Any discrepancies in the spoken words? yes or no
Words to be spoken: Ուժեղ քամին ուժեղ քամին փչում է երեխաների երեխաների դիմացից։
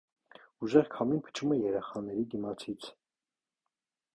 yes